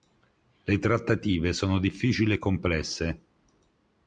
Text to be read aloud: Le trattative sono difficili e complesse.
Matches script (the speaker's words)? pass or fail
pass